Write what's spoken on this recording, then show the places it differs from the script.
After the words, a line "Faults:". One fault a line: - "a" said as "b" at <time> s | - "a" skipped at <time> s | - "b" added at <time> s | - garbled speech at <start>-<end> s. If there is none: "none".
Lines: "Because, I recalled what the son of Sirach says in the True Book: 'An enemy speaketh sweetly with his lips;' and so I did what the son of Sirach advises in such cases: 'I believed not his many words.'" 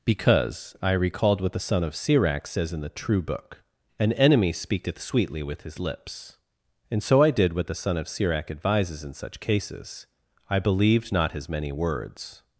"Because, I recalled what the son of Sirach says in the True Book: 'An enemy speaketh sweetly with his lips;' and so I did what the son of Sirach advises in such cases: 'I believed not his many words.'"
Faults:
none